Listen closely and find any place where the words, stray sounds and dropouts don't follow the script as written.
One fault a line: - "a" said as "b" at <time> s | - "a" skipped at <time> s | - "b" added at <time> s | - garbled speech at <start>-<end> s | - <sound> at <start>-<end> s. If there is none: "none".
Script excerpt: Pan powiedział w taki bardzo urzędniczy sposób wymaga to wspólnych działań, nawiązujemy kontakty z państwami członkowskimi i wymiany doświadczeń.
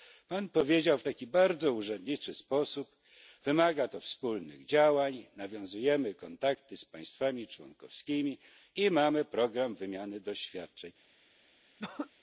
- "mamy program" added at 8.9 s
- throat clearing at 11.8-12.1 s